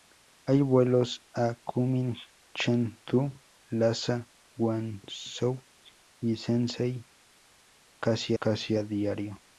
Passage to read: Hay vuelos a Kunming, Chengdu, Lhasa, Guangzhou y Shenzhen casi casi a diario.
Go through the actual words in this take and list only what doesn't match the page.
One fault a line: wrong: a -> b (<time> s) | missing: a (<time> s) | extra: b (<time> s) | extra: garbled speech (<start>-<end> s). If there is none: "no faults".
no faults